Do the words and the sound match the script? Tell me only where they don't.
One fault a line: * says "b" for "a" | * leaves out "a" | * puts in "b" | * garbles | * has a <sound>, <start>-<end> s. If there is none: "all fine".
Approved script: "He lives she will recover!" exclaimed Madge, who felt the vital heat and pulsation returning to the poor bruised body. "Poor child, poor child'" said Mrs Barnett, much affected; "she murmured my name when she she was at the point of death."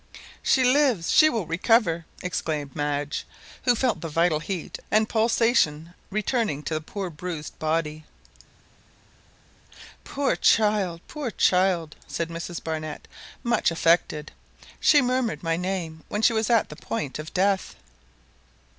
* says "She" for "He"
* leaves out "she"